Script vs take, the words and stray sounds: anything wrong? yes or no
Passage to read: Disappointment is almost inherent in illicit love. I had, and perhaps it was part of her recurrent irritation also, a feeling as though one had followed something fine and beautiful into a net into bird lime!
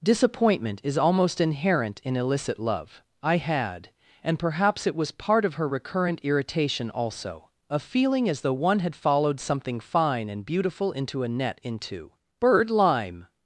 no